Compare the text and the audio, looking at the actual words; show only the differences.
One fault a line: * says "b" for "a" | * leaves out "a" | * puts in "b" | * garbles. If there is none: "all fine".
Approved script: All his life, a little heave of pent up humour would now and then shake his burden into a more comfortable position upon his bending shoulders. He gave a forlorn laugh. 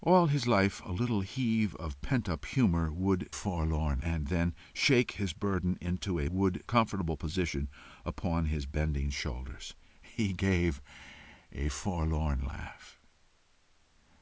* says "forlorn" for "now"
* says "would" for "more"